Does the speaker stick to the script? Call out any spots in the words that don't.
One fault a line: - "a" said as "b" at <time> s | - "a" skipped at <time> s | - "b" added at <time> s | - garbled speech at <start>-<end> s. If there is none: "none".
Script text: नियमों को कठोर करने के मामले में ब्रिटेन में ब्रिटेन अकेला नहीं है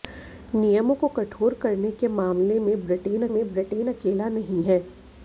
none